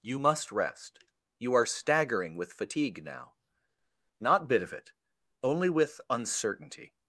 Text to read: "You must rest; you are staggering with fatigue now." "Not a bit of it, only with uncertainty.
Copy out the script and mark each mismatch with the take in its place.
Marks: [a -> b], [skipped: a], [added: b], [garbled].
"You must rest; you are staggering with fatigue now." "Not [skipped: a] bit of it, only with uncertainty.